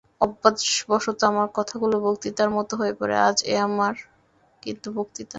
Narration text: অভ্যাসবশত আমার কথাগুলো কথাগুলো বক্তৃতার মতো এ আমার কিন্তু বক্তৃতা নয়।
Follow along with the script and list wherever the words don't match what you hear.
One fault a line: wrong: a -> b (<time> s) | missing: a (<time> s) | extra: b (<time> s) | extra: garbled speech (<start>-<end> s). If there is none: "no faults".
missing: কথাগুলো (1.9 s)
extra: হয়ে পড়ে আজ (2.8 s)